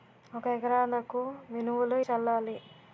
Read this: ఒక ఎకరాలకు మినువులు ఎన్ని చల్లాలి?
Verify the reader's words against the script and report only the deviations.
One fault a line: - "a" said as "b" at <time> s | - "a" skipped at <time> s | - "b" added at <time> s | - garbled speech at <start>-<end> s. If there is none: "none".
- "ఎన్ని" skipped at 1.9 s